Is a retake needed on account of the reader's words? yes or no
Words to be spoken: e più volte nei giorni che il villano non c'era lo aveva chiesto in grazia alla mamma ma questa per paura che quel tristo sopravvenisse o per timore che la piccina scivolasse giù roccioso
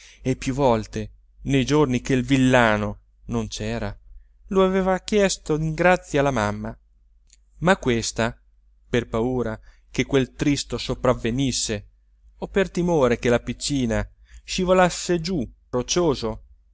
no